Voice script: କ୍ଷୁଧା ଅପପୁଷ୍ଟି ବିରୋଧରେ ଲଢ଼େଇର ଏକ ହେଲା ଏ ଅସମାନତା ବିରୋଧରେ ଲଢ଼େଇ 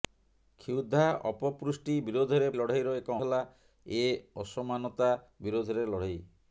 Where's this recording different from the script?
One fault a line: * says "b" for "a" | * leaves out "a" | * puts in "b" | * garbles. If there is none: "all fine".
all fine